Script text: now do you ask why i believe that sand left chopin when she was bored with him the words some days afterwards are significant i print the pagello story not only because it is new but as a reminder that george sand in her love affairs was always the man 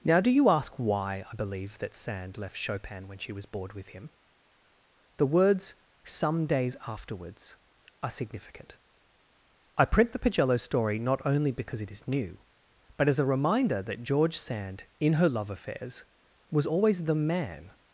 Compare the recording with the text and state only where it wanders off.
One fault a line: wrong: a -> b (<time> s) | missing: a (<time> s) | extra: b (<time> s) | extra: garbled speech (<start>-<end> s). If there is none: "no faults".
no faults